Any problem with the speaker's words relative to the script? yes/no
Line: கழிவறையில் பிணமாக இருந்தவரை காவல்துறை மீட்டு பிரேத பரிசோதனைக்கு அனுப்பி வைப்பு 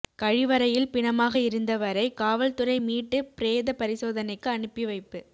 no